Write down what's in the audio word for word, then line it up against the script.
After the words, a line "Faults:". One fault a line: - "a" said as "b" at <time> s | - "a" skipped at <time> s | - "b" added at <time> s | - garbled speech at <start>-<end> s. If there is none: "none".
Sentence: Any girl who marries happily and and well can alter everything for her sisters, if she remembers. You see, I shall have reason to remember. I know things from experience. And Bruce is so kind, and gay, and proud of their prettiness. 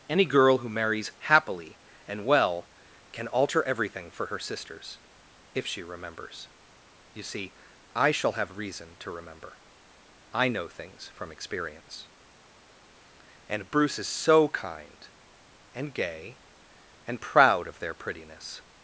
Any girl who marries happily and well can alter everything for her sisters, if she remembers. You see, I shall have reason to remember. I know things from experience. And Bruce is so kind, and gay, and proud of their prettiness.
Faults:
- "and" skipped at 2.2 s